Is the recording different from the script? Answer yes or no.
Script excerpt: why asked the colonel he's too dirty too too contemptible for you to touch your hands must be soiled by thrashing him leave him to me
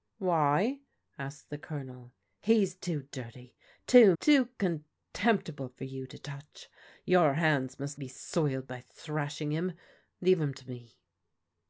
no